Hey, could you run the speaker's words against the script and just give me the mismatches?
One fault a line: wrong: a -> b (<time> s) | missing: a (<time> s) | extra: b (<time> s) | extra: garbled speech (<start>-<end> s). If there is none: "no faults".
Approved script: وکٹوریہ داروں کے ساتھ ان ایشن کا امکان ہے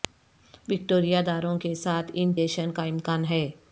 no faults